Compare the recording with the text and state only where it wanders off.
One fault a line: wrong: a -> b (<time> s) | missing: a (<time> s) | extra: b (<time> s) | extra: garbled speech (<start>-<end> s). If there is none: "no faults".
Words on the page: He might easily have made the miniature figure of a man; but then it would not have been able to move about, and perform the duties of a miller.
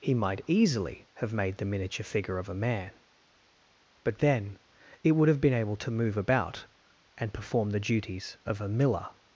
missing: not (5.3 s)